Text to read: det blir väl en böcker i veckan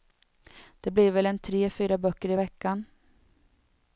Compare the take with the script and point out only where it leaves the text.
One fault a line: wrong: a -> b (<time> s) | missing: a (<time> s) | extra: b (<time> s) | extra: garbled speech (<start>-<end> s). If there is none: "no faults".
extra: tre fyra (1.4 s)